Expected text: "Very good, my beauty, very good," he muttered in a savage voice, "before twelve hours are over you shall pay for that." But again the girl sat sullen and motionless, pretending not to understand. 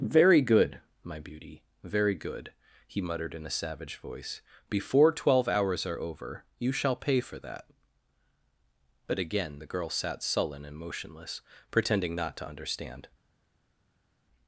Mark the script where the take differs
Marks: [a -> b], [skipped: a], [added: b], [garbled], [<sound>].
"Very good, my beauty, very good," he muttered in a savage voice, "before twelve hours are over you shall pay for that." But again the girl sat sullen and motionless, pretending not to understand.